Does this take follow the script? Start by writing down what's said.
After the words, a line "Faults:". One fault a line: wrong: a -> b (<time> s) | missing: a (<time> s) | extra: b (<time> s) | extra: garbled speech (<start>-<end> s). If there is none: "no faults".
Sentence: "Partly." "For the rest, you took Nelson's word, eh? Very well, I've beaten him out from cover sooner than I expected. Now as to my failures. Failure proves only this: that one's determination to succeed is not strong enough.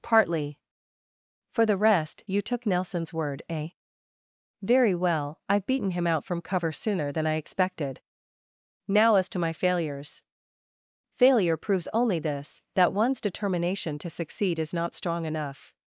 "Partly." "For the rest, you took Nelson's word, eh? Very well, I've beaten him out from cover sooner than I expected. Now as to my failures. Failure proves only this: that one's determination to succeed is not strong enough.
Faults:
no faults